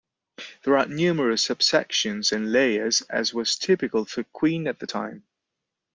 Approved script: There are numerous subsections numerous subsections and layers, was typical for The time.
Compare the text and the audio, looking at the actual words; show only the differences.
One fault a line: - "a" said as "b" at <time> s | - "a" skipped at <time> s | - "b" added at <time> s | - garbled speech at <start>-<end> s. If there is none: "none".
- "numerous subsections" skipped at 2.3 s
- "as" added at 3.0 s
- "Queen at" added at 4.2 s